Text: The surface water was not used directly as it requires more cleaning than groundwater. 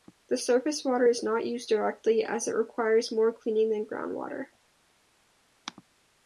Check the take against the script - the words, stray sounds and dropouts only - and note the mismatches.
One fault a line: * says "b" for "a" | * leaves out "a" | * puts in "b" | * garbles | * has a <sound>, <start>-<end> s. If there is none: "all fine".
* says "is" for "was"